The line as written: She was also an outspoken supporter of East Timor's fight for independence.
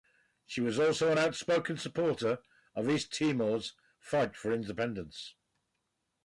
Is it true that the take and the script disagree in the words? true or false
false